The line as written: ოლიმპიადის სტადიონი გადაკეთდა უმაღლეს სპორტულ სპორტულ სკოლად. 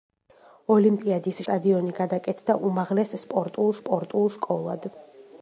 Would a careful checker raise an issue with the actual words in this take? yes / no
no